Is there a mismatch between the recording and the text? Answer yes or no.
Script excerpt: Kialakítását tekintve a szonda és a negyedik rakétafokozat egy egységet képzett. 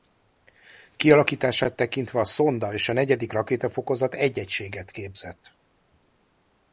no